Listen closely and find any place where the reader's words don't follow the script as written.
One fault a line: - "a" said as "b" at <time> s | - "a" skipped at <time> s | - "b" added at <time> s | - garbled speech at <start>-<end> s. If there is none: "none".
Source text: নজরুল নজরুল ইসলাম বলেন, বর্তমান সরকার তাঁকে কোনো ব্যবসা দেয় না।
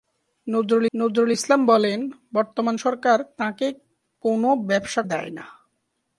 none